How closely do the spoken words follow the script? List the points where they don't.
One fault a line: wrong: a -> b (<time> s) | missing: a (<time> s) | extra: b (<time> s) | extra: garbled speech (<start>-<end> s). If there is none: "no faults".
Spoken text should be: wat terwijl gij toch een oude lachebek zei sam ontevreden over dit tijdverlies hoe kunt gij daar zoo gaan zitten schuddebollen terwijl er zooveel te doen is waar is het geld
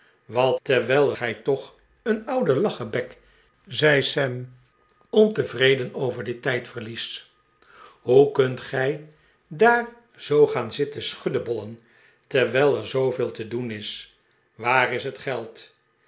no faults